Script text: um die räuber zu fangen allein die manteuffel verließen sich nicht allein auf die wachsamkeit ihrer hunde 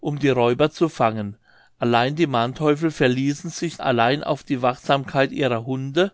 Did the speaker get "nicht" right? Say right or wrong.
wrong